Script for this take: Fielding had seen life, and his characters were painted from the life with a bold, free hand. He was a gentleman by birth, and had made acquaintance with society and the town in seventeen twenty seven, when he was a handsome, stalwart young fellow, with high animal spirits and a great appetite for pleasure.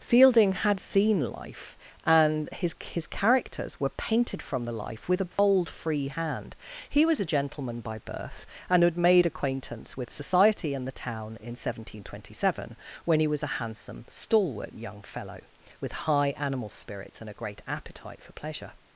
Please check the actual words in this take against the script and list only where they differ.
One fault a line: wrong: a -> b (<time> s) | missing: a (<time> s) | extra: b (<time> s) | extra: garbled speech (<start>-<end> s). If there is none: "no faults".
extra: his (2.8 s)